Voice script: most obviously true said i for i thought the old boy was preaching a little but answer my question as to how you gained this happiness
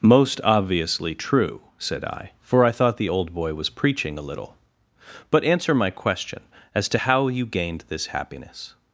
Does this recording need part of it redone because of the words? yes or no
no